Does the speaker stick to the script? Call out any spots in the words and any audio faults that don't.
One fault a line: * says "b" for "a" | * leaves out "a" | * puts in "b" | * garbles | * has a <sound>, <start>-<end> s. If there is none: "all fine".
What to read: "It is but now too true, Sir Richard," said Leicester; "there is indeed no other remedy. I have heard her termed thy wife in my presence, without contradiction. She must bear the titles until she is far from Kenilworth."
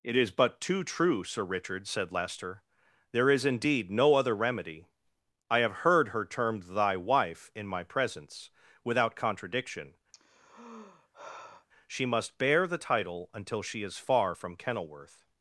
* leaves out "now"
* has a sigh, 10.1-11.7 s
* says "title" for "titles"